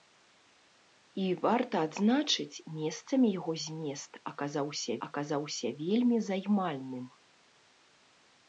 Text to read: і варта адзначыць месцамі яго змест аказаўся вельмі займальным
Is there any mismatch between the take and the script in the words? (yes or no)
yes